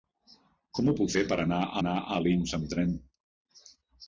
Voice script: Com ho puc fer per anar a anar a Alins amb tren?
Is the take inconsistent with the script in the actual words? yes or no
no